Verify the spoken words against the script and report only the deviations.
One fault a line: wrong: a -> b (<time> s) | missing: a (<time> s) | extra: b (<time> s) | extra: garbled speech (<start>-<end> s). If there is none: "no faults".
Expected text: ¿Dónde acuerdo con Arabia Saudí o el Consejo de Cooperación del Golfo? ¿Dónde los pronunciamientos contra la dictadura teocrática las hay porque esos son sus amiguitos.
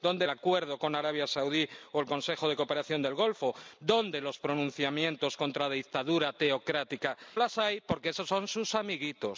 no faults